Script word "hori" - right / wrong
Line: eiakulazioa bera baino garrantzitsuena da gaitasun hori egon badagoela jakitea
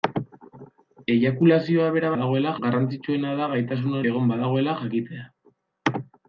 wrong